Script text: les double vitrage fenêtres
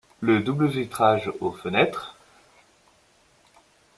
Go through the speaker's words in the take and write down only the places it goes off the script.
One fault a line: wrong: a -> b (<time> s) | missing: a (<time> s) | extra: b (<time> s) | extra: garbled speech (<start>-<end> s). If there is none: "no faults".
wrong: les -> le (0.2 s)
extra: aux (1.4 s)